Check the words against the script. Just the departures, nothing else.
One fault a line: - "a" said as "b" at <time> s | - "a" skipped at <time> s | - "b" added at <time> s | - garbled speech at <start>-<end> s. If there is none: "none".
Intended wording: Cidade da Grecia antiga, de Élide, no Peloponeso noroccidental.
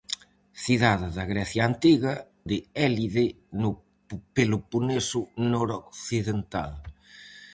none